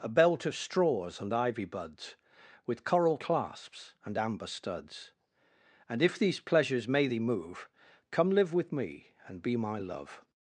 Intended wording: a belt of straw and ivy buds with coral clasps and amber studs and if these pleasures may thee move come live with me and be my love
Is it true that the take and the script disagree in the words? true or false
true